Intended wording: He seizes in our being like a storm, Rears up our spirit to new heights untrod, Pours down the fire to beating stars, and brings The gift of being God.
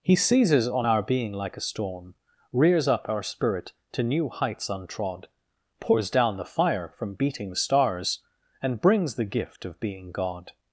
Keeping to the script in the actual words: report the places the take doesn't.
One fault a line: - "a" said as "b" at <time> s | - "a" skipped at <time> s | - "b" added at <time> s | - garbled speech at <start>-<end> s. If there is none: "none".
- "in" said as "on" at 0.7 s
- "to" said as "from" at 7.0 s